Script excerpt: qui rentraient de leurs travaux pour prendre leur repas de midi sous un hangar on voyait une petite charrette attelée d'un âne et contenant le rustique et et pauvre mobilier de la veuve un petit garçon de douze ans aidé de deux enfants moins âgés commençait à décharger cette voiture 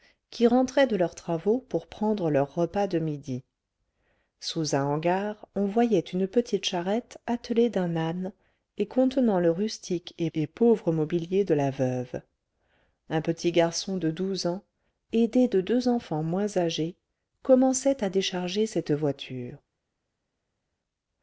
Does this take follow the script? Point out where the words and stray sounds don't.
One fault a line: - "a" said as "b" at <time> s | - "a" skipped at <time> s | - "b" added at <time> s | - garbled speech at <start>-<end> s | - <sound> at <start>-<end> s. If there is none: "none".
none